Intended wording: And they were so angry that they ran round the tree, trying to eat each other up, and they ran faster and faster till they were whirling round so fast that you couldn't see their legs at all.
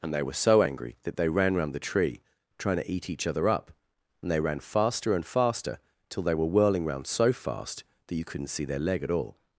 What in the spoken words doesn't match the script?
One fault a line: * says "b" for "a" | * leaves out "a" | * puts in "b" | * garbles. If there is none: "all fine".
* says "leg" for "legs"